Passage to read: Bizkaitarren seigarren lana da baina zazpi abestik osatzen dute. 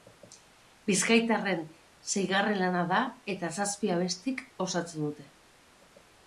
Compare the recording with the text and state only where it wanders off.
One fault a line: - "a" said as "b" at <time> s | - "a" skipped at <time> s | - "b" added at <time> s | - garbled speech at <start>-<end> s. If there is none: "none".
- "baina" said as "eta" at 3.4 s